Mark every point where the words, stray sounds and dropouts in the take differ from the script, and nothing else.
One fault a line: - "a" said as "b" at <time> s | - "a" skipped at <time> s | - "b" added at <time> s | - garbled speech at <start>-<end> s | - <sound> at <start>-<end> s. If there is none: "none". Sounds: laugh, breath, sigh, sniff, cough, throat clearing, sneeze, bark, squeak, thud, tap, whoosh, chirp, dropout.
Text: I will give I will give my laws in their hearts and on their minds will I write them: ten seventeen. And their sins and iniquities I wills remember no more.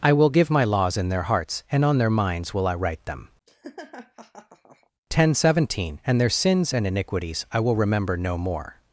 - "I will give" skipped at 0.5 s
- laugh at 3.5-4.9 s
- "wills" said as "will" at 7.6 s